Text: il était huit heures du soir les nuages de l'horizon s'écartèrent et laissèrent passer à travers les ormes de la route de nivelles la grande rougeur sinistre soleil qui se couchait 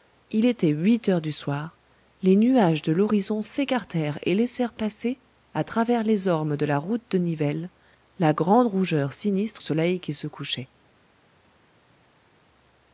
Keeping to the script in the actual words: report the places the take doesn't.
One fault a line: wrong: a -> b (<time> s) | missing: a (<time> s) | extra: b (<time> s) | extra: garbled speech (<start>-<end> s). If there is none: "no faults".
no faults